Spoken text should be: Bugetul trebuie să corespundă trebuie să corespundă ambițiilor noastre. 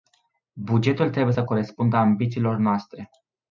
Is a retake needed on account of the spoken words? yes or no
yes